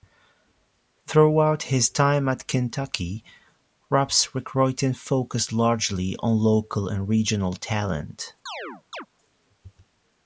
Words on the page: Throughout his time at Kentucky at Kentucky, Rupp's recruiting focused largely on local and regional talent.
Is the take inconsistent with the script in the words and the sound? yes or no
yes